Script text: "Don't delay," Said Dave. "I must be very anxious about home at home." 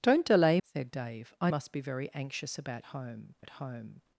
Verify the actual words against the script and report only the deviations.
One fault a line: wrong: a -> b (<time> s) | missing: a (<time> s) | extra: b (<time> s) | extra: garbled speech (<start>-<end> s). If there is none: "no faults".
no faults